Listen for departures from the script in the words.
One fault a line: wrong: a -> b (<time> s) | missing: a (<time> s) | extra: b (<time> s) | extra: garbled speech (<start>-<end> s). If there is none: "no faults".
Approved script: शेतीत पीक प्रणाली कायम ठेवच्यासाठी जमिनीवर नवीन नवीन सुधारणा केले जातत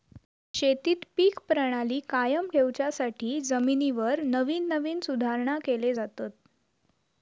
no faults